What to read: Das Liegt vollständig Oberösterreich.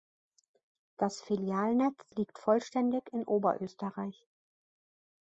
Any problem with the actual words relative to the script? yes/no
yes